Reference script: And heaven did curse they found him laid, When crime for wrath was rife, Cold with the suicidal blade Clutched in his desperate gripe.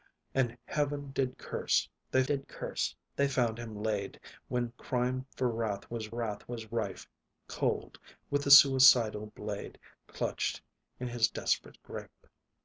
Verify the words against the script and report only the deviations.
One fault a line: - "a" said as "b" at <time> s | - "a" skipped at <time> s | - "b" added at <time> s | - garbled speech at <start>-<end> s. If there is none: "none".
- "did curse they" added at 2.2 s
- "wrath was" added at 6.1 s